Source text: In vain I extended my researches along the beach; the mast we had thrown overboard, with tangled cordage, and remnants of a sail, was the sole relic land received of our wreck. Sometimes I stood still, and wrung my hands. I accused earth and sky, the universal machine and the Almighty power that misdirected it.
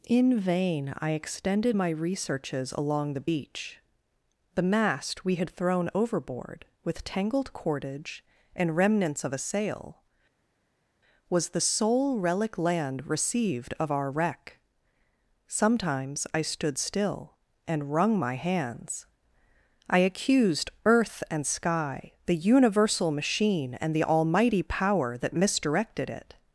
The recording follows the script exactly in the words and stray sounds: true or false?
true